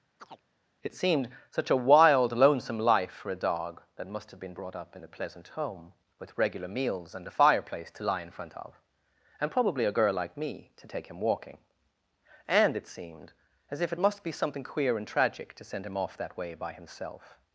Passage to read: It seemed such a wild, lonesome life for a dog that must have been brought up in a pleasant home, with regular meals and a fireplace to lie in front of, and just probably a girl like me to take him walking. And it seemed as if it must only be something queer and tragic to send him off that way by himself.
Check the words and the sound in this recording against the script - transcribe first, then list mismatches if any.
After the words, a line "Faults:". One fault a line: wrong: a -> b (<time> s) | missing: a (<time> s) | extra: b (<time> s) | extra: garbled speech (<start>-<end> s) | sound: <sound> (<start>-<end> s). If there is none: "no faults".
It seemed such a wild, lonesome life for a dog that must have been brought up in a pleasant home, with regular meals and a fireplace to lie in front of, and probably a girl like me to take him walking. And it seemed as if it must be something queer and tragic to send him off that way by himself.
Faults:
sound: chirp (0.2-0.4 s)
missing: just (9.5 s)
missing: only (14.2 s)